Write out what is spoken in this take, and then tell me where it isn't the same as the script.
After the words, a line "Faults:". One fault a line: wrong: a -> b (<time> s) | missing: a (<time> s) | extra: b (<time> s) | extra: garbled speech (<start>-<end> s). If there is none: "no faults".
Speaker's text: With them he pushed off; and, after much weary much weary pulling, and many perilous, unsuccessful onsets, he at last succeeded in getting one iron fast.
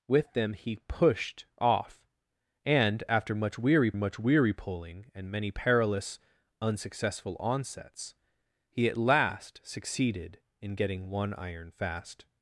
With them he pushed off; and, after much weary much weary pulling, and many perilous, unsuccessful onsets, he at last succeeded in getting one iron fast.
Faults:
no faults